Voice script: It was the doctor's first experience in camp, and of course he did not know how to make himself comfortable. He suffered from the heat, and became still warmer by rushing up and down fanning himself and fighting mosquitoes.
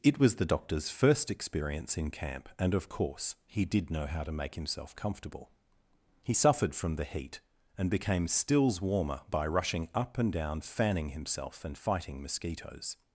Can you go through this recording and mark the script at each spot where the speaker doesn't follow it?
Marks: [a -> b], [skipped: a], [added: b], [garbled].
It was the doctor's first experience in camp, and of course he did [skipped: not] know how to make himself comfortable. He suffered from the heat, and became [still -> stills] warmer by rushing up and down fanning himself and fighting mosquitoes.